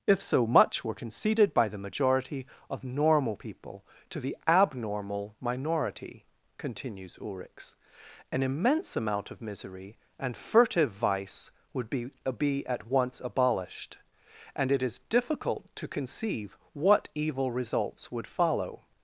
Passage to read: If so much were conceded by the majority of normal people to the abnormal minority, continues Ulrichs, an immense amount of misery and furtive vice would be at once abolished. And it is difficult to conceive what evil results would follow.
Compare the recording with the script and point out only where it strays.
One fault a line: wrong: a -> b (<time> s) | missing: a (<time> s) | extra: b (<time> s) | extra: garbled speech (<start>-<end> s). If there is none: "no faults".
extra: be (12.4 s)